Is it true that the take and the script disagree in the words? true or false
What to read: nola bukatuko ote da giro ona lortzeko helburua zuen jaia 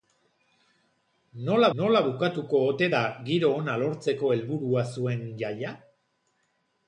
true